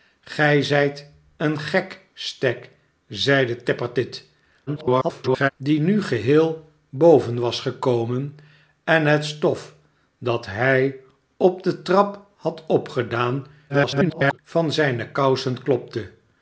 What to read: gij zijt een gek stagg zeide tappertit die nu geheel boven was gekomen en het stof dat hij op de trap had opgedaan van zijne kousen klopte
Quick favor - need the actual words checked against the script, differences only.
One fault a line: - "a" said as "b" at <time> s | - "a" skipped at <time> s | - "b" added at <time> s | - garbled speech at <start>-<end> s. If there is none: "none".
- garbled speech at 4.7-5.5 s
- garbled speech at 13.7-14.4 s